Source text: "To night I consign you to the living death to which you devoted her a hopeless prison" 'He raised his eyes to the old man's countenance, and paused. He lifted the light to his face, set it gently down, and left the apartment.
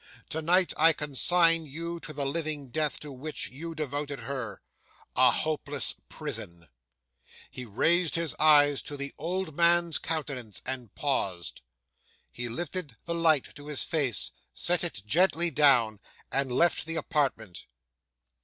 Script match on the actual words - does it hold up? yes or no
yes